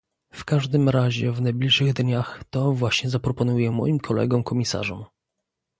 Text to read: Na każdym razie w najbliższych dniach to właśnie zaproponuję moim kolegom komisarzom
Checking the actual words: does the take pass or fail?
fail